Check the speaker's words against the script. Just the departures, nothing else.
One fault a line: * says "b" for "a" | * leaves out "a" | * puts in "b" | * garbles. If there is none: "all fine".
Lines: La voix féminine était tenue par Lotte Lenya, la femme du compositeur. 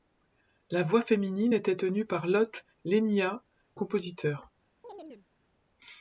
* leaves out "la femme du"